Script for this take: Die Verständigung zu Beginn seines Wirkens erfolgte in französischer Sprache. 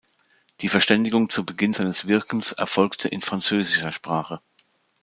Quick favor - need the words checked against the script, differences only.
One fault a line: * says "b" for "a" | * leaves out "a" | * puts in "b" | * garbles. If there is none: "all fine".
all fine